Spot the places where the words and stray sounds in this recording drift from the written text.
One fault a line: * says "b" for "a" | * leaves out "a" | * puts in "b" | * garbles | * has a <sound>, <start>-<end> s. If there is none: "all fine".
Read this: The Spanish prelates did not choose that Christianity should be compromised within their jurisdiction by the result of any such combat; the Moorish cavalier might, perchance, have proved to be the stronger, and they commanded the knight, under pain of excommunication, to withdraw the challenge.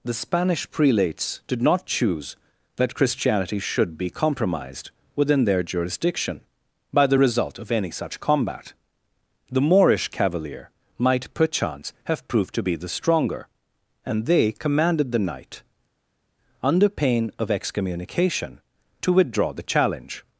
all fine